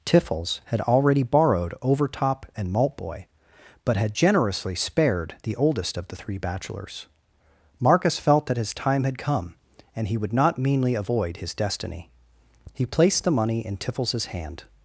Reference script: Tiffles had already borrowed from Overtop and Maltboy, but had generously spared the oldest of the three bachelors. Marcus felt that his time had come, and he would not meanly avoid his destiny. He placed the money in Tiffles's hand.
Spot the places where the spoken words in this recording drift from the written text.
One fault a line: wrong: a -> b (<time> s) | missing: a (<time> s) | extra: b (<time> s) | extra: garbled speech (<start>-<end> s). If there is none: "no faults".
missing: from (1.7 s)